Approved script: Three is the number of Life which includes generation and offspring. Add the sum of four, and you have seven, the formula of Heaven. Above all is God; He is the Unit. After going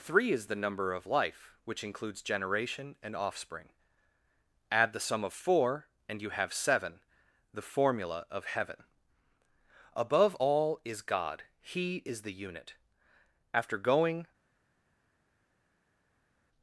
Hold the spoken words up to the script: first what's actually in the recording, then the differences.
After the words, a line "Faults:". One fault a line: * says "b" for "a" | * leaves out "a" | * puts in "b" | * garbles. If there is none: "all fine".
Three is the number of Life which includes generation and offspring. Add the sum of four, and you have seven, the formula of Heaven. Above all is God; He is the Unit. After going
Faults:
all fine